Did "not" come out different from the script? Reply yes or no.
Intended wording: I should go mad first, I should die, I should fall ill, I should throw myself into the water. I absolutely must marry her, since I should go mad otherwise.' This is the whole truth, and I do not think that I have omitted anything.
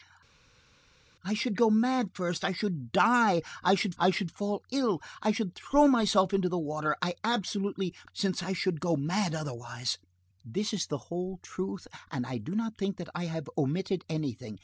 no